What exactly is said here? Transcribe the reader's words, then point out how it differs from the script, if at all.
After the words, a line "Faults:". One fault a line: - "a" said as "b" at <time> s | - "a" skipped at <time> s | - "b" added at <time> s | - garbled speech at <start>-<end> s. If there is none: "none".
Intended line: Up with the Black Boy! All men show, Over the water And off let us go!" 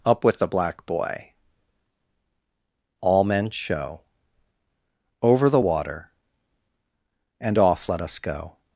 Up with the Black Boy! All men show, Over the water And off let us go!"
Faults:
none